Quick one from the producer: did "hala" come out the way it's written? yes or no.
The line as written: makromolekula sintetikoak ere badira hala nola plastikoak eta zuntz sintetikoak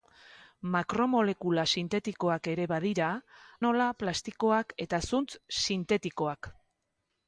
no